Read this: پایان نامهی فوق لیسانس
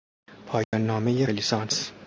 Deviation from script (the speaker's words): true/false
true